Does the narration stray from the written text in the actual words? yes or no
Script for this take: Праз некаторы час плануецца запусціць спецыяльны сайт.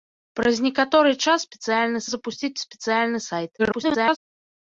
yes